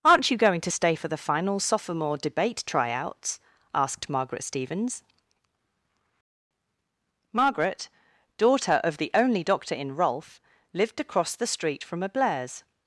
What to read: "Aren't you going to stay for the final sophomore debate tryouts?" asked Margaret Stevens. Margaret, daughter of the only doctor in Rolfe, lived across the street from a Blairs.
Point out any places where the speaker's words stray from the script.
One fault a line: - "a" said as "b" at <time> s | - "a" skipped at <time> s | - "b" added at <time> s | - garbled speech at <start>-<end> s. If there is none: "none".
none